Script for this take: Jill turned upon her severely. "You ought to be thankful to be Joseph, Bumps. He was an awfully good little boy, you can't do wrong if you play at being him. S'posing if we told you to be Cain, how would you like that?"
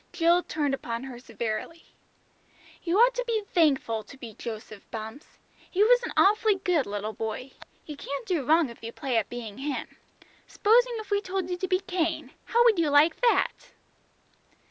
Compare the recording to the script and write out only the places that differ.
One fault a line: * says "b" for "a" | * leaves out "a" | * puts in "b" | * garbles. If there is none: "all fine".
all fine